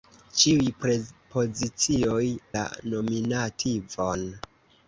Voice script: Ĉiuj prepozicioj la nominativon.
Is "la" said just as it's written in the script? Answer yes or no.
yes